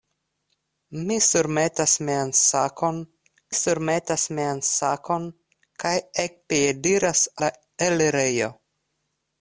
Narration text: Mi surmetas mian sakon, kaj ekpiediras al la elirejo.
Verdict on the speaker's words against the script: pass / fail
fail